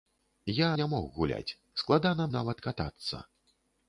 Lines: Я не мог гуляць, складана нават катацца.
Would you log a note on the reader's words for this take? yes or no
no